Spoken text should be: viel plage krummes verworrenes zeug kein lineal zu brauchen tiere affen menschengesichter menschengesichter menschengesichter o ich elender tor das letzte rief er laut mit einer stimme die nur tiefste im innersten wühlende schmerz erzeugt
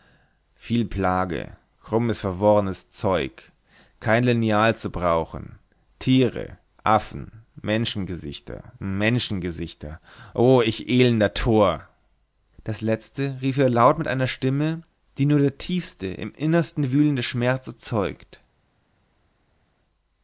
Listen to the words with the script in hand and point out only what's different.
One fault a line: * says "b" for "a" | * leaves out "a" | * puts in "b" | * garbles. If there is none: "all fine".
* leaves out "menschengesichter"
* puts in "der"